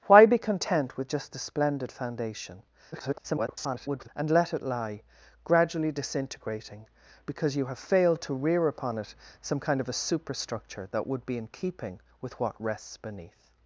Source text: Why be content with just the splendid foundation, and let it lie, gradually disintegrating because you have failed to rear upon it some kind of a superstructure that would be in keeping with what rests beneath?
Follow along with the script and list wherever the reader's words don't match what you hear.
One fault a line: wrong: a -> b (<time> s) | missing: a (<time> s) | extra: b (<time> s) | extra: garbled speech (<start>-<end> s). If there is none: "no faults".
extra: garbled speech (2.9-4.1 s)